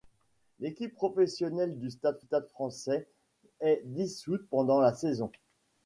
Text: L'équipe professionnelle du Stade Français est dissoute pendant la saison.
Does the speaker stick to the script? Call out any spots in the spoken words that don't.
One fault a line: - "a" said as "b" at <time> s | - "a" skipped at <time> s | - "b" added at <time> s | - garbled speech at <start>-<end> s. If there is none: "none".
- "Stade" added at 2.2 s